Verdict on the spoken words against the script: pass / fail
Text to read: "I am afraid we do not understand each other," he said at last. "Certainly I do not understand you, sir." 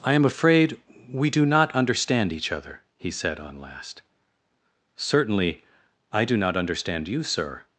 fail